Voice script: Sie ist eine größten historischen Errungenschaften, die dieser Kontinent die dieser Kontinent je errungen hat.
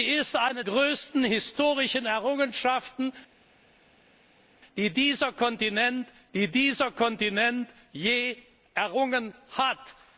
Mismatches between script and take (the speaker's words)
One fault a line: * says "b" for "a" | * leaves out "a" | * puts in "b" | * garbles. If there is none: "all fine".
all fine